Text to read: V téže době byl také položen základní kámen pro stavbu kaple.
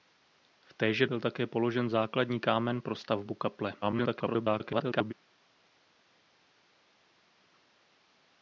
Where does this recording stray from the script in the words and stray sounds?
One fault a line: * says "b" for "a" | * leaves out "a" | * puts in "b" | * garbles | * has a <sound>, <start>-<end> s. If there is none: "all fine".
* leaves out "době"
* garbles